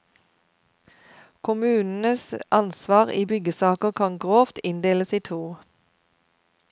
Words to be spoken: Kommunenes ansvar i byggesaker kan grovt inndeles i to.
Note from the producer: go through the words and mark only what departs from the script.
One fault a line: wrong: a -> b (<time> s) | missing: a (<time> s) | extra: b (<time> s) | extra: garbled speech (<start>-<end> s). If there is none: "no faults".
no faults